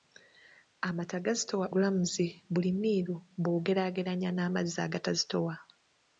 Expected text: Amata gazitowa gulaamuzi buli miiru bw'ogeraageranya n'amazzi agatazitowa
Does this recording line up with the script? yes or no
yes